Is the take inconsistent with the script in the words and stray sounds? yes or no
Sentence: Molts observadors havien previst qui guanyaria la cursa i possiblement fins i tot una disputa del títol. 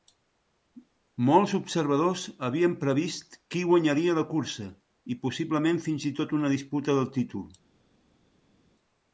no